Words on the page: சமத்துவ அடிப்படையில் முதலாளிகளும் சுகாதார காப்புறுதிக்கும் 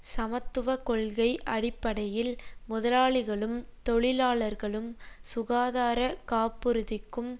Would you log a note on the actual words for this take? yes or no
yes